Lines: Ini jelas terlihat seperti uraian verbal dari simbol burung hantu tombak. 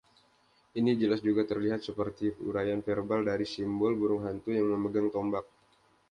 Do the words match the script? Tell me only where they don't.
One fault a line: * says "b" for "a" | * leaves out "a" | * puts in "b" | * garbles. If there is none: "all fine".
* puts in "juga"
* puts in "yang memegang"